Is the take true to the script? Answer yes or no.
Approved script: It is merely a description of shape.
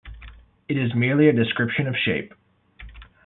yes